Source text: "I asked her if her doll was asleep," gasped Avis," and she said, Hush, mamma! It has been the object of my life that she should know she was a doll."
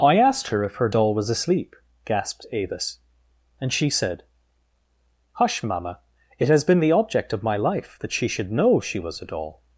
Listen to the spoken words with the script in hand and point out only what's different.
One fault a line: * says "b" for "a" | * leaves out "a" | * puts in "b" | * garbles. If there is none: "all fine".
all fine